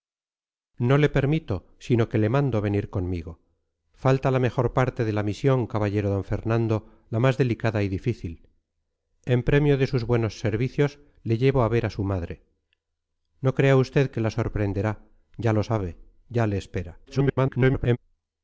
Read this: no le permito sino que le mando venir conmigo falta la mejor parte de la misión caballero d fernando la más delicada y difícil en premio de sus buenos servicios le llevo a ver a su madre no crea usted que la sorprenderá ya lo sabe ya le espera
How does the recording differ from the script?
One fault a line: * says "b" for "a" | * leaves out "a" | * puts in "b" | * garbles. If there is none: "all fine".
* garbles